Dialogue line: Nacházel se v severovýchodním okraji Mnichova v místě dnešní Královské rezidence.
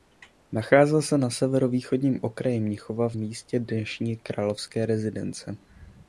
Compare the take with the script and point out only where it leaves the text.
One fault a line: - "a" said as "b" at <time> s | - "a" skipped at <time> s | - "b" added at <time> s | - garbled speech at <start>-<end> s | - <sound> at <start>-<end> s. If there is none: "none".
- "v" said as "na" at 1.2 s